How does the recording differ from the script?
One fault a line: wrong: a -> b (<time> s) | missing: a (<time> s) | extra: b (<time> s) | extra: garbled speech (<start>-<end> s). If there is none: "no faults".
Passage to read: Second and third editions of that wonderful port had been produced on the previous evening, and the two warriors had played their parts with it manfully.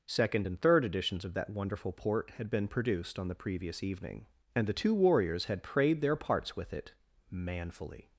wrong: played -> prayed (5.6 s)